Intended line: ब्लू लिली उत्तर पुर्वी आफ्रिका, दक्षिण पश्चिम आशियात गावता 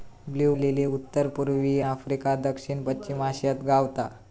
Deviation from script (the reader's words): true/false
false